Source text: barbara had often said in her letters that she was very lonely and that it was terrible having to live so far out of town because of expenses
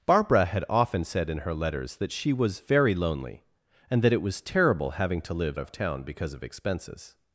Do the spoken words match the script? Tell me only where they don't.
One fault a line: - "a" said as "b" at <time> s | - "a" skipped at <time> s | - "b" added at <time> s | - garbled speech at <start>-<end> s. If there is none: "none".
- "so far out" skipped at 5.6 s